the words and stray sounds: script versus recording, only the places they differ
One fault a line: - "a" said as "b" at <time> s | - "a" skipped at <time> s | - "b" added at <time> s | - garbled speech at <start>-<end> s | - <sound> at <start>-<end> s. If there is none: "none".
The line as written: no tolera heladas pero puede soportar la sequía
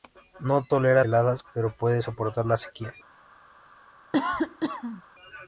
- cough at 4.1-5.0 s